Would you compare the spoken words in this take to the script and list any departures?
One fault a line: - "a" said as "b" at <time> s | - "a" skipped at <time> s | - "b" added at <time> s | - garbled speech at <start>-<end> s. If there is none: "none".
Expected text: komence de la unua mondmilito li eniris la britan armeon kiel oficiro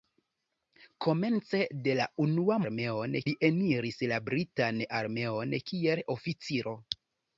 - "mondmilito" said as "armeon" at 2.7 s